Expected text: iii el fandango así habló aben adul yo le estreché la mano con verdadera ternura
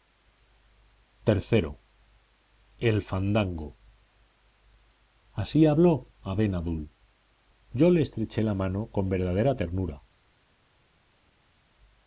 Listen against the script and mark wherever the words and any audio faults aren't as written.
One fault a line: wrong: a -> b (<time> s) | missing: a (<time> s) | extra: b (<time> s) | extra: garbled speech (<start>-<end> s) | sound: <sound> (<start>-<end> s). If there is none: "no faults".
no faults